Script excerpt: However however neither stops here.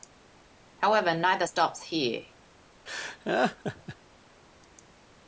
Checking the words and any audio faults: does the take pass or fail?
fail